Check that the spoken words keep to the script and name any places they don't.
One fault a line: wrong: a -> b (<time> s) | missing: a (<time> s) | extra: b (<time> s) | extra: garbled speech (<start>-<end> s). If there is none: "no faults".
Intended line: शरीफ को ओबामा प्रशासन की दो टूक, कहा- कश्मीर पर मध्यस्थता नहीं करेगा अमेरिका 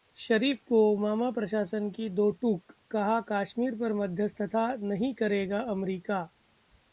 no faults